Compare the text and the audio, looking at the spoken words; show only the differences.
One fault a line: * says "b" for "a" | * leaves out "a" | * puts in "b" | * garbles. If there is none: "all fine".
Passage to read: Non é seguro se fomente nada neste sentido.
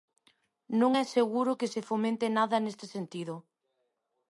* puts in "que"